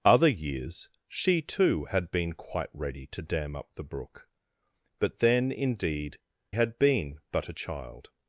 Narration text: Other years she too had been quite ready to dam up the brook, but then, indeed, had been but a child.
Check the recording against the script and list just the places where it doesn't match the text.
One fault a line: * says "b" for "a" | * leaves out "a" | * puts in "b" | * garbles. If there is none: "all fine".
all fine